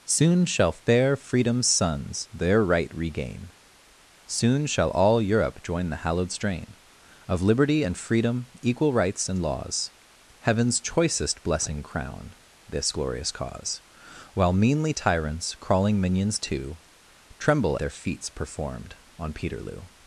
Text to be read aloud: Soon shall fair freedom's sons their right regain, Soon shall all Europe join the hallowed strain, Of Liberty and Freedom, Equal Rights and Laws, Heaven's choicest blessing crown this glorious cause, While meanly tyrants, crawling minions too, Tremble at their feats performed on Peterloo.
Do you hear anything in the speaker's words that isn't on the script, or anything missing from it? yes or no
yes